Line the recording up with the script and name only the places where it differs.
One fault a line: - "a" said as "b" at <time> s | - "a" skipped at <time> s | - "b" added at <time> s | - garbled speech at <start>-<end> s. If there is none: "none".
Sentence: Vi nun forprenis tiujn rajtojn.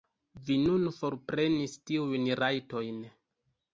none